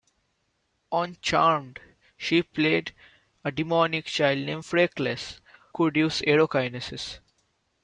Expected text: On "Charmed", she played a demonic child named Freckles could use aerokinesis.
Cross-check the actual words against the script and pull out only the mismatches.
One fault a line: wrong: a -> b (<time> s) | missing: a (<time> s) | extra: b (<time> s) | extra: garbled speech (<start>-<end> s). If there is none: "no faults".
no faults